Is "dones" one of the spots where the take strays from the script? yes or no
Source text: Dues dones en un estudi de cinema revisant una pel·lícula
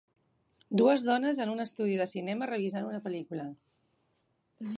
no